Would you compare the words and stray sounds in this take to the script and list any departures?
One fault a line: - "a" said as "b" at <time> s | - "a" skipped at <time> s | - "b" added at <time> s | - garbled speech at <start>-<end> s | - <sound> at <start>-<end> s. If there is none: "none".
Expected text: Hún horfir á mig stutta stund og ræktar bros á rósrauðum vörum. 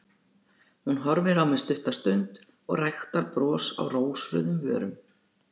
none